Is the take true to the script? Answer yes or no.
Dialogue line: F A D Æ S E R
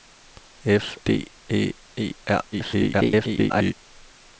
no